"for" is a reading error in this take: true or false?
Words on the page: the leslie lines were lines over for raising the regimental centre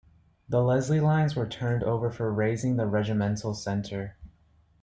false